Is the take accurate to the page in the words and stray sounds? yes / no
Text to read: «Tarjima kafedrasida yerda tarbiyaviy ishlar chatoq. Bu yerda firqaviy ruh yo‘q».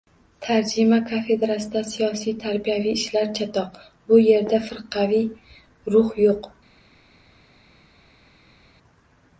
no